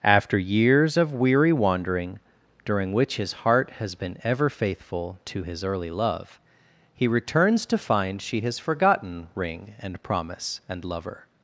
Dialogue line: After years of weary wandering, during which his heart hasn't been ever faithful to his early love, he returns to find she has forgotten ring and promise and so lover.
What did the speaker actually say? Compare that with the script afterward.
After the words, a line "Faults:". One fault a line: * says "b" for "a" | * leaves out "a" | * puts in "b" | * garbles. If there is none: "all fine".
After years of weary wandering, during which his heart has been ever faithful to his early love, he returns to find she has forgotten ring and promise and lover.
Faults:
* says "has" for "hasn't"
* leaves out "so"